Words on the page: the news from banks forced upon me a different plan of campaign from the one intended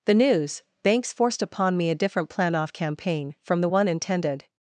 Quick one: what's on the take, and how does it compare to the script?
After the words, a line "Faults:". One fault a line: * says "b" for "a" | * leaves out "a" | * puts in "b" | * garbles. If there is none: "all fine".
the news banks forced upon me a different plan off campaign from the one intended
Faults:
* leaves out "from"
* says "off" for "of"